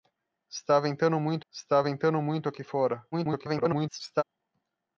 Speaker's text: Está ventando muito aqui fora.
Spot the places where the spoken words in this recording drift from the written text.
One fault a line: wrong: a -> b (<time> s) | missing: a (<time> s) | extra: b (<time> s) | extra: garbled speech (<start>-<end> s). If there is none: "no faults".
extra: está ventando muito (1.5 s)
extra: garbled speech (3.1-4.2 s)